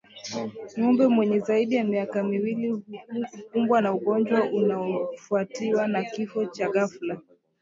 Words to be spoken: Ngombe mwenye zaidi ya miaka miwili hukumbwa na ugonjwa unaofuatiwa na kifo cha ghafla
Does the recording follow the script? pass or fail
pass